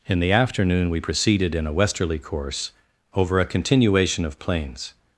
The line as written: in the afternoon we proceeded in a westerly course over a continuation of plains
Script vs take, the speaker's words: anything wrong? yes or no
no